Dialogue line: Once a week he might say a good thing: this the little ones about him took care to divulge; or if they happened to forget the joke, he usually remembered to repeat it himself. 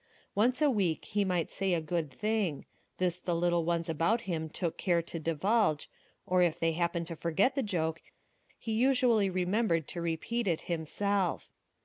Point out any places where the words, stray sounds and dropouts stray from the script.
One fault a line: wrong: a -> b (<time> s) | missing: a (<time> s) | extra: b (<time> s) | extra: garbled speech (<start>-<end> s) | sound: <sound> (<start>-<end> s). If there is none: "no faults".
no faults